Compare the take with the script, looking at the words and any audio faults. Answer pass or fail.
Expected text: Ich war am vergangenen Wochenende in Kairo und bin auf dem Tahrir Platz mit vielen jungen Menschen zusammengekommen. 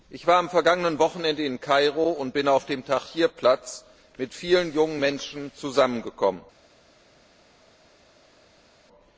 pass